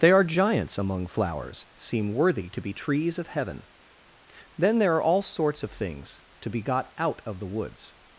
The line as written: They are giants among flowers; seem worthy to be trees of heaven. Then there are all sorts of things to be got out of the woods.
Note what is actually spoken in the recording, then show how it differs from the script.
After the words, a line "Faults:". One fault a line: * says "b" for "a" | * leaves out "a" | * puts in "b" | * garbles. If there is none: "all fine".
They are giants among flowers; seem worthy to be trees of heaven. Then there are all sorts of things to be got out of the woods.
Faults:
all fine